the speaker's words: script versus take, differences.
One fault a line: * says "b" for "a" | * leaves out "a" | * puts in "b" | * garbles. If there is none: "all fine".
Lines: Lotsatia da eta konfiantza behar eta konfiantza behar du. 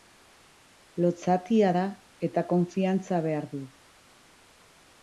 * leaves out "eta konfiantza behar"